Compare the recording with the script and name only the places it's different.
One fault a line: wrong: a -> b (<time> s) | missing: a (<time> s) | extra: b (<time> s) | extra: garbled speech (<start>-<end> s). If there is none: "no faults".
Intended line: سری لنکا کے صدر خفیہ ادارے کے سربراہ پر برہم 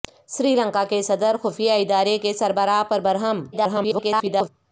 extra: garbled speech (3.5-4.5 s)